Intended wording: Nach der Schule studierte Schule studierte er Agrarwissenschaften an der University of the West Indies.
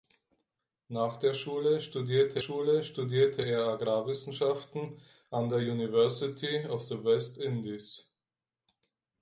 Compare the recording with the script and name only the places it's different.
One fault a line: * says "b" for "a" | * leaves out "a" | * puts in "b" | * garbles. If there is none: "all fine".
all fine